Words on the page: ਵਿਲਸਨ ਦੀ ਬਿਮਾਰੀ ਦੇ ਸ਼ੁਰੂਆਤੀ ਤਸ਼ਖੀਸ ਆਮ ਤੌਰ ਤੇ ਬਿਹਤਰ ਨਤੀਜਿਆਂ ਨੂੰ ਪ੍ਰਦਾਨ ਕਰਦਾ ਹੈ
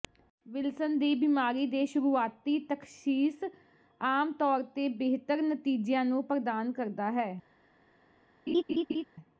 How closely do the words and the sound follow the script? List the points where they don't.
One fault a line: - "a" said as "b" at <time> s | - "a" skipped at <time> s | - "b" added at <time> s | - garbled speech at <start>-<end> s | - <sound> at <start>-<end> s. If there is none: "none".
- laugh at 8.5-9.0 s